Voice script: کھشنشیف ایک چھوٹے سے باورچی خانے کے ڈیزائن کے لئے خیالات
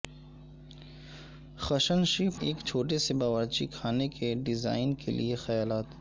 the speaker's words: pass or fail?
pass